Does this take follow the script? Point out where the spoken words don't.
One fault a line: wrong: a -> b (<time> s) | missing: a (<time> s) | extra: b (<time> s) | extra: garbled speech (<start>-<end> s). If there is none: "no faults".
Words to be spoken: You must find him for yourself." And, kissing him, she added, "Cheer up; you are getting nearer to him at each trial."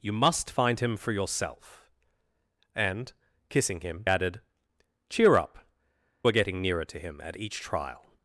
missing: she (4.0 s)
missing: you (5.7 s)